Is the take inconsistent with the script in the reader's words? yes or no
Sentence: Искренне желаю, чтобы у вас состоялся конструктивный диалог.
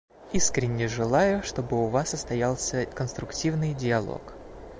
no